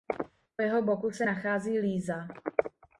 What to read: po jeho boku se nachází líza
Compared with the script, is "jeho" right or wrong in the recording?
right